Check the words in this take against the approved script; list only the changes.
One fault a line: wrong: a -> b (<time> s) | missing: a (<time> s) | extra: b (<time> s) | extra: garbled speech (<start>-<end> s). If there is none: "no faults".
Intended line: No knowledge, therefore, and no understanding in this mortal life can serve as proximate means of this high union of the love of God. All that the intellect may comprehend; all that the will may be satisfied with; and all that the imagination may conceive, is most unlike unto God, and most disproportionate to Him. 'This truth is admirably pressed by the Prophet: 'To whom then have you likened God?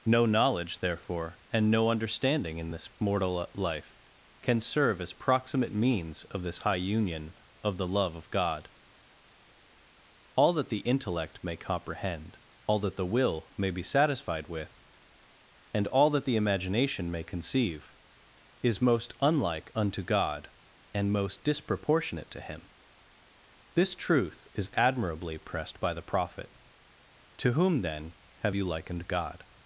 no faults